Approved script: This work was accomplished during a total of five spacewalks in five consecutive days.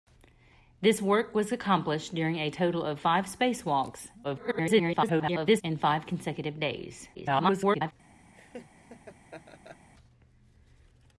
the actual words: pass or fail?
fail